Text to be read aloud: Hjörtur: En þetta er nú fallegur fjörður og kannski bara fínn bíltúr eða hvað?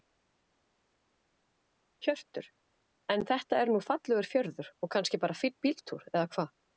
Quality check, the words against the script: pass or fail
pass